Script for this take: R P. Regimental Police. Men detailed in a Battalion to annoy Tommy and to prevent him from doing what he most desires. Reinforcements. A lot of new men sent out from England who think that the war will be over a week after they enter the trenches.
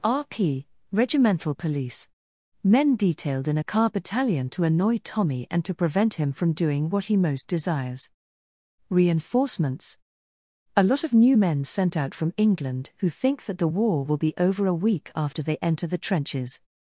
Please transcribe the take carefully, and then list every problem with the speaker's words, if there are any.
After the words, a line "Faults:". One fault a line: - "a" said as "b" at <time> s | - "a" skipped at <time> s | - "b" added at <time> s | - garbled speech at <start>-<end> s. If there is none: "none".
R P. Regimental Police. Men detailed in a car Battalion to annoy Tommy and to prevent him from doing what he most desires. Reinforcements. A lot of new men sent out from England who think that the war will be over a week after they enter the trenches.
Faults:
- "car" added at 3.6 s